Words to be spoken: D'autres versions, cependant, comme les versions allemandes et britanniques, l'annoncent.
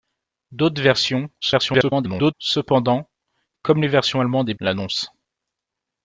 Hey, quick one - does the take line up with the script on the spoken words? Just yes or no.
no